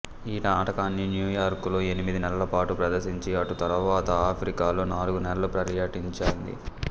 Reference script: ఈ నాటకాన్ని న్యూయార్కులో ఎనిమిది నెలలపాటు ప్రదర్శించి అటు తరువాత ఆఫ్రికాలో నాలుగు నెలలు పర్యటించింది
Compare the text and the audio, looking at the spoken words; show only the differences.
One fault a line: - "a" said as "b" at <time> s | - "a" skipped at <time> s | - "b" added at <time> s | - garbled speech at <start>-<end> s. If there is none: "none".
none